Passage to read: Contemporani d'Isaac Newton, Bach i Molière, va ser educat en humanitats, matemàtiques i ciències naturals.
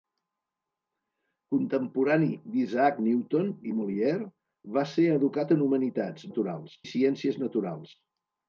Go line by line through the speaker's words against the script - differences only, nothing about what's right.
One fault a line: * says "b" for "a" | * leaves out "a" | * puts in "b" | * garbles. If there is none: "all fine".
* leaves out "Bach"
* says "naturals" for "matemàtiques"